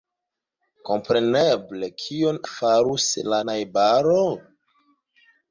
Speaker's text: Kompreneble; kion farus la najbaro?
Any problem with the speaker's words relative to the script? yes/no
no